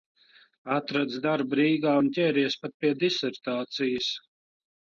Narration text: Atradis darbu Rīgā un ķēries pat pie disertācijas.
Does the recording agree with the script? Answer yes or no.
yes